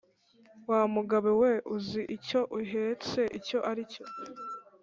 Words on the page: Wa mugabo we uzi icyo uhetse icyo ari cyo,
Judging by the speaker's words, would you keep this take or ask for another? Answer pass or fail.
pass